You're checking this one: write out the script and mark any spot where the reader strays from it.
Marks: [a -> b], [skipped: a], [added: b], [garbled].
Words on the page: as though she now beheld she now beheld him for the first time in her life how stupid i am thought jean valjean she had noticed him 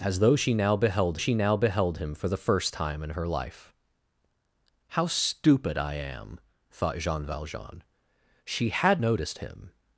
as though she now beheld she now beheld him for the first time in her life how stupid i am thought jean valjean she had noticed him